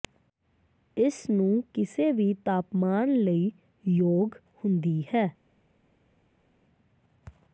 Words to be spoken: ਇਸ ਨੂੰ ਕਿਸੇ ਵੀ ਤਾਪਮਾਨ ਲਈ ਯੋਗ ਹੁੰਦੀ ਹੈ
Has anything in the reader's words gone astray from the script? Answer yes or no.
no